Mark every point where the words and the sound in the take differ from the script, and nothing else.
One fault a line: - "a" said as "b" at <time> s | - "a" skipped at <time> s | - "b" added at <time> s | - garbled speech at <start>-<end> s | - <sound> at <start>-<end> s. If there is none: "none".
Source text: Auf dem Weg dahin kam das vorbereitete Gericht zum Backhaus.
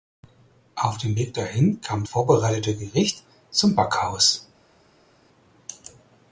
- "das" skipped at 2.0 s